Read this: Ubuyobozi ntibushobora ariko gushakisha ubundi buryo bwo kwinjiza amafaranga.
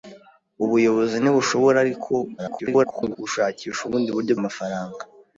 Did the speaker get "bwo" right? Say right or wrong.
wrong